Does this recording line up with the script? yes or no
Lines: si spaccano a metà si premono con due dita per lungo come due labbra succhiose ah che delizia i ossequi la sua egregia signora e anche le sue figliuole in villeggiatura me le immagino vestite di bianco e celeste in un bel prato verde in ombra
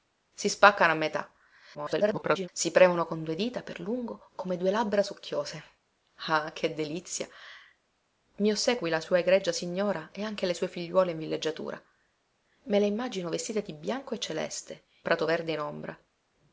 no